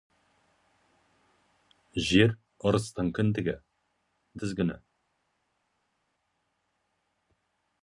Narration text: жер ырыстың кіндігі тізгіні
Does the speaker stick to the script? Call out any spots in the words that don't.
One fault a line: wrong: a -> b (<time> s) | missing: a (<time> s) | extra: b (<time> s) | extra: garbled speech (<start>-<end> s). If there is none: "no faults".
no faults